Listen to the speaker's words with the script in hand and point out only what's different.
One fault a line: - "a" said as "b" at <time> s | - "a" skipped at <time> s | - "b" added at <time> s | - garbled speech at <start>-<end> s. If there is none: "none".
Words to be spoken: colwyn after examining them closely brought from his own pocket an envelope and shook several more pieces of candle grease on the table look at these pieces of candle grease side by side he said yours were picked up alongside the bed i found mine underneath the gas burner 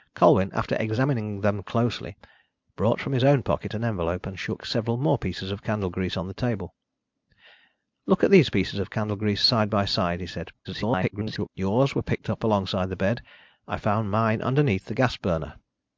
- garbled speech at 10.6-11.5 s